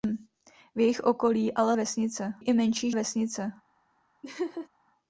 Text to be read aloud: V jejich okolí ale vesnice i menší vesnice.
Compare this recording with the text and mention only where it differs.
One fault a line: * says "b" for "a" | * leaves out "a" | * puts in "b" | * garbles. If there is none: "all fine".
all fine